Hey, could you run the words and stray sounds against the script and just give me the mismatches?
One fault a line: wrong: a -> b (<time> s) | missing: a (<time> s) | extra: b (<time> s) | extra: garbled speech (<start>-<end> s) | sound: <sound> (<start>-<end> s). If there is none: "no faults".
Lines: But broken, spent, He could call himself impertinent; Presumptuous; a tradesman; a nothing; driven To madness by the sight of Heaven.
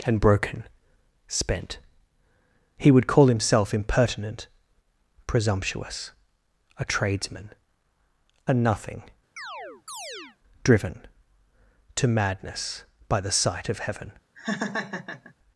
wrong: But -> And (0.0 s)
wrong: could -> would (2.9 s)
sound: chirp (9.4-10.4 s)
sound: laugh (14.4-15.3 s)